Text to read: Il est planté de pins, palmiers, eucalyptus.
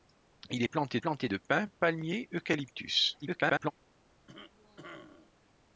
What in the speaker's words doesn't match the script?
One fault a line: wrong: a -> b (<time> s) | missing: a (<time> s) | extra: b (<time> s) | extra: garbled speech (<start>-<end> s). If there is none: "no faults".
extra: planté (1.0 s)
extra: garbled speech (3.2-3.7 s)